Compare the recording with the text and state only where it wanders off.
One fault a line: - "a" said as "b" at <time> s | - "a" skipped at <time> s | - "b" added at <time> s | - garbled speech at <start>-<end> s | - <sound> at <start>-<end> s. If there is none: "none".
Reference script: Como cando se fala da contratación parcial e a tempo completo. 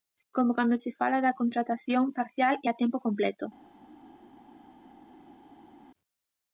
none